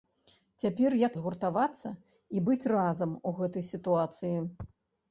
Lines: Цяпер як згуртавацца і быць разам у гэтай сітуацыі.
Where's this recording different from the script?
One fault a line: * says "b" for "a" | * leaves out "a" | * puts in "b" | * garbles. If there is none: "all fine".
all fine